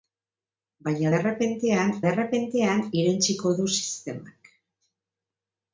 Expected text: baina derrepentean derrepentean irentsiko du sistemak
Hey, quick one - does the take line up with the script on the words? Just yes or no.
yes